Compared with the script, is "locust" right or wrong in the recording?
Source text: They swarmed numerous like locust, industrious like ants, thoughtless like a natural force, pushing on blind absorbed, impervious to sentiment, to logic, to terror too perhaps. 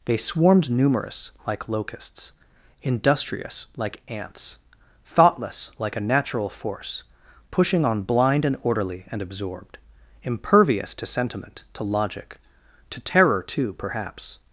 wrong